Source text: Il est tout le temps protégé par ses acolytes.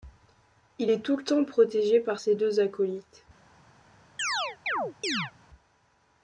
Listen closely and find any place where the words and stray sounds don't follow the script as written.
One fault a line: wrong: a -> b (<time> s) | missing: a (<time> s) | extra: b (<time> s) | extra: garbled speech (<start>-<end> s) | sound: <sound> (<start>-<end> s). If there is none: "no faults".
extra: deux (2.3 s)
sound: chirp (4.2-5.3 s)